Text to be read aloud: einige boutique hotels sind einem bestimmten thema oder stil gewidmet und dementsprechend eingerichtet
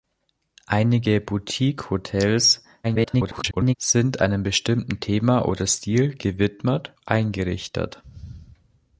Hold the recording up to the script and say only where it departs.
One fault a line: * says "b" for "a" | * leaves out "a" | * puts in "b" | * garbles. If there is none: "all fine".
* garbles
* leaves out "und dementsprechend"